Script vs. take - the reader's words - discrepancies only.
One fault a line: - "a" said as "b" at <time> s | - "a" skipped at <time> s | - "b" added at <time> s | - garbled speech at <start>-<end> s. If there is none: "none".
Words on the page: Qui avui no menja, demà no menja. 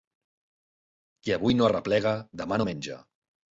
- "menja" said as "arreplega" at 1.7 s